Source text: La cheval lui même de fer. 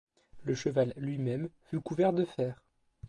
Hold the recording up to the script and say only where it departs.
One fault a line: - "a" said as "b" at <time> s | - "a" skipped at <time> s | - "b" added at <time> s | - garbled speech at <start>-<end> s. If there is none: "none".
- "La" said as "Le" at 0.4 s
- "fut couvert" added at 1.6 s